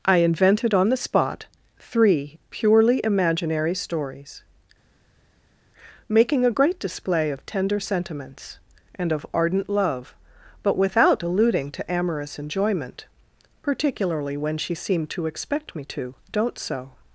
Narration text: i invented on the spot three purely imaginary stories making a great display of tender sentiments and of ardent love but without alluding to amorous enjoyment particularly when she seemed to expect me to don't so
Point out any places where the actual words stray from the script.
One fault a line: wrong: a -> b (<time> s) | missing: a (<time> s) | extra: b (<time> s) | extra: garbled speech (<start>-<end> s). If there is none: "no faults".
no faults